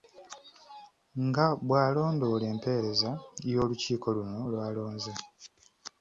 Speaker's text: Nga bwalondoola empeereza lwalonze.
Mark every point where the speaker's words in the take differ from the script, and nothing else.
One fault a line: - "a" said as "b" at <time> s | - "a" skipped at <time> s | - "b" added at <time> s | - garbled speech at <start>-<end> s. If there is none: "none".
- "y'olukiiko luno" added at 3.5 s